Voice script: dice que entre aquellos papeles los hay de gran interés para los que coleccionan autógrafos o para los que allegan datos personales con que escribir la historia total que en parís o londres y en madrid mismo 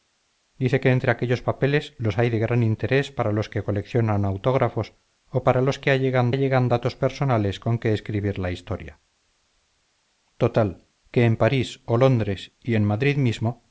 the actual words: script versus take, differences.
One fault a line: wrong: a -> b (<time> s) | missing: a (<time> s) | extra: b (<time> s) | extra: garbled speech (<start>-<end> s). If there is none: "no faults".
extra: allegan (6.3 s)